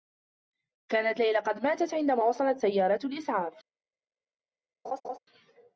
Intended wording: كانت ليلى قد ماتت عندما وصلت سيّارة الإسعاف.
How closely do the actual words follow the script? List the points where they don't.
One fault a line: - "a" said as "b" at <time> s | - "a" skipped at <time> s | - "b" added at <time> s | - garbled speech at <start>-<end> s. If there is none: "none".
none